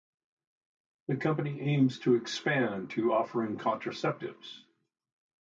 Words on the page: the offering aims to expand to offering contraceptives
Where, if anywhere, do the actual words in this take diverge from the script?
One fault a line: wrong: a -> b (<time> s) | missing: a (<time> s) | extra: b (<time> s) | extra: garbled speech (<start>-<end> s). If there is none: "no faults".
wrong: offering -> company (1.1 s)